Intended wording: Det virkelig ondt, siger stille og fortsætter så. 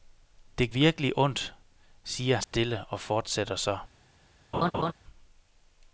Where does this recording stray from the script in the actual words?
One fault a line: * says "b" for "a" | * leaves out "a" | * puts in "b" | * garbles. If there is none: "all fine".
all fine